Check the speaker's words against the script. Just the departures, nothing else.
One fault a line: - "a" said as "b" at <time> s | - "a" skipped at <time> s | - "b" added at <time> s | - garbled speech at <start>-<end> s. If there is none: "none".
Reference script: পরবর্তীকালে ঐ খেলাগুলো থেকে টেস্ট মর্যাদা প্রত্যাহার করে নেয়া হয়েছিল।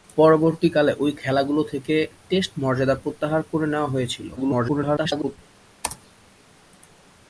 - garbled speech at 4.4-5.4 s